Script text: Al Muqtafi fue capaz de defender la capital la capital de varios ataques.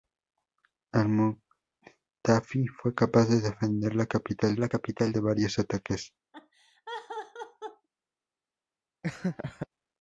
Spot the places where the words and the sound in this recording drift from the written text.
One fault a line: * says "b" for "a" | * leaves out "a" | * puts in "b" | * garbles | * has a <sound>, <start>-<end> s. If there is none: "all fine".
* has a laugh, 6.3-7.9 s
* has a laugh, 9.0-9.7 s